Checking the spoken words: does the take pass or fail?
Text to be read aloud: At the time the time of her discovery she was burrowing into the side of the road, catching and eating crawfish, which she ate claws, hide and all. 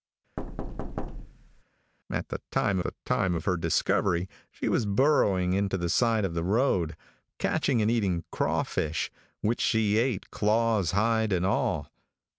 pass